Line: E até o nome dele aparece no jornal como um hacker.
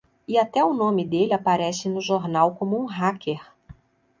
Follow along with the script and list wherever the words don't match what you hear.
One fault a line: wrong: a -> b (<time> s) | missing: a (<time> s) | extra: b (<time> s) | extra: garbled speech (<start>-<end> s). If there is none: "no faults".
no faults